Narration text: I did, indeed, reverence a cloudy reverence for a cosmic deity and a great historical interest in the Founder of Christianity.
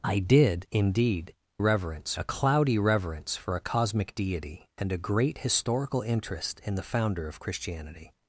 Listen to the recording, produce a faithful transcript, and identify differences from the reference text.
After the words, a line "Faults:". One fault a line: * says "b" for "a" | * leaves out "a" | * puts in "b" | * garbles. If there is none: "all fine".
I did, indeed, reverence a cloudy reverence for a cosmic deity and a great historical interest in the Founder of Christianity.
Faults:
all fine